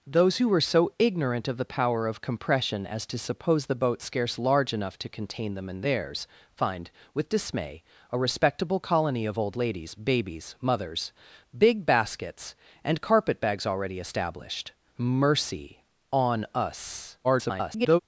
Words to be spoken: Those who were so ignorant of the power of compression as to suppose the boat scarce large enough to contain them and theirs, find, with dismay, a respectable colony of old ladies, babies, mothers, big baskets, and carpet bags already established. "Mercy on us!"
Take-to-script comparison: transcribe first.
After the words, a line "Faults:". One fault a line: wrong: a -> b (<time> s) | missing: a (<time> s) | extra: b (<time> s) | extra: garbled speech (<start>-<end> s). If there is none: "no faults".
Those who were so ignorant of the power of compression as to suppose the boat scarce large enough to contain them and theirs, find, with dismay, a respectable colony of old ladies, babies, mothers, big baskets, and carpet bags already established. "Mercy on us!" [garbled]
Faults:
extra: garbled speech (17.2-18.0 s)